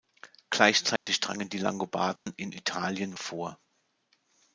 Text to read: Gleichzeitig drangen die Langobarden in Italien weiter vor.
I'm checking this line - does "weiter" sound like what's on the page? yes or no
no